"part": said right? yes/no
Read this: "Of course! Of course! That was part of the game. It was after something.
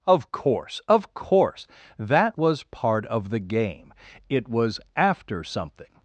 yes